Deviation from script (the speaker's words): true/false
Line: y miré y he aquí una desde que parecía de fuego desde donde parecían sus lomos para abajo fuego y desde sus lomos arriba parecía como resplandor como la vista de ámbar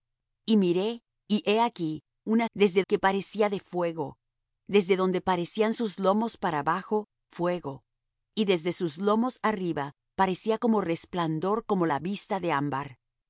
false